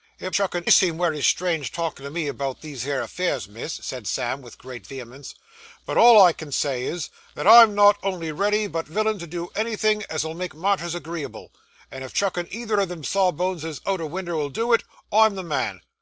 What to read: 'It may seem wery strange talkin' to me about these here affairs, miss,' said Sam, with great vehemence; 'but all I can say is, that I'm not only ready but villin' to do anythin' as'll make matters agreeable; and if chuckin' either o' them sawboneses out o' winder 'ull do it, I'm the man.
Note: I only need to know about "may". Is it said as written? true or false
false